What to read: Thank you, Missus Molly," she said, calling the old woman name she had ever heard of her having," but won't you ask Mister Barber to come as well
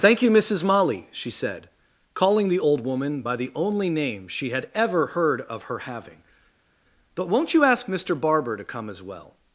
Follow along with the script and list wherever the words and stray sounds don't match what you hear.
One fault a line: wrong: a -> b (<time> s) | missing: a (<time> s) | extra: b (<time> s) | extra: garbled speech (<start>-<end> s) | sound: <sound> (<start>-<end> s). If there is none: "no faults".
extra: by the only (3.2 s)